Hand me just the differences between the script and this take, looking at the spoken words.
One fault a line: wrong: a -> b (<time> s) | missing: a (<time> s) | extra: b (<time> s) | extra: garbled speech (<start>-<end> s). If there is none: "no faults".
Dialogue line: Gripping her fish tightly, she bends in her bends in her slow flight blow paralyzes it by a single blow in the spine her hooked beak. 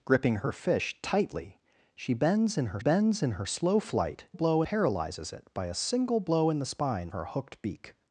no faults